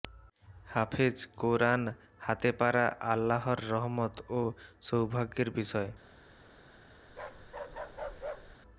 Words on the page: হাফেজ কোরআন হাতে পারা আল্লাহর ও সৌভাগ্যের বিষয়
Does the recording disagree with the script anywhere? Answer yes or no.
yes